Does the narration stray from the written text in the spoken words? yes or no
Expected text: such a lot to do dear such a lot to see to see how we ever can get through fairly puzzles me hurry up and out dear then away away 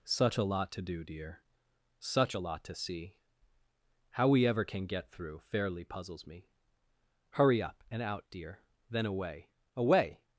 yes